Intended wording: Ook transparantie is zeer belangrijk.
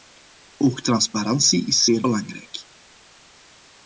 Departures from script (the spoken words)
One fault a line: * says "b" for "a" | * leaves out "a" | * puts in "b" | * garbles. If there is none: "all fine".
all fine